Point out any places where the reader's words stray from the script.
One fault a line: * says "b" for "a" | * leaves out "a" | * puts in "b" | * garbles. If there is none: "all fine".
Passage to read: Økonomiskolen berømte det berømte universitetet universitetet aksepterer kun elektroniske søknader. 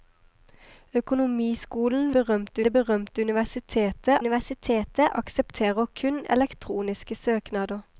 all fine